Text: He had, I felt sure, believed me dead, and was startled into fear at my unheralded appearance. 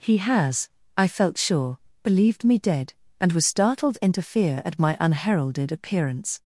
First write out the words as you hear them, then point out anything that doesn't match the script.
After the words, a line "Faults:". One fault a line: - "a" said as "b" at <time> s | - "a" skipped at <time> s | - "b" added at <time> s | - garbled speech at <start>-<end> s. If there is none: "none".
He has, I felt sure, believed me dead, and was startled into fear at my unheralded appearance.
Faults:
- "had" said as "has" at 0.2 s